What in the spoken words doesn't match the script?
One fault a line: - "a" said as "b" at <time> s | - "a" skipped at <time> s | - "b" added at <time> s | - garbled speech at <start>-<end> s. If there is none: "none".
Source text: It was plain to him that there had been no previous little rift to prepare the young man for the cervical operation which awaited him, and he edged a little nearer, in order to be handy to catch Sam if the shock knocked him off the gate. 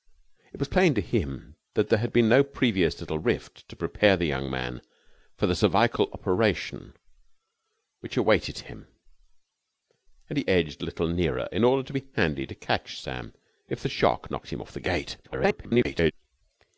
- garbled speech at 15.2-16.1 s